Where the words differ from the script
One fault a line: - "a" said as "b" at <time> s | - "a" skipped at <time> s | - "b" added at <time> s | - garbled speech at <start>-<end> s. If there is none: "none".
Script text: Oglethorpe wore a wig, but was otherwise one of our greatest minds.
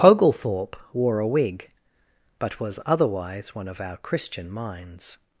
- "greatest" said as "christian" at 4.0 s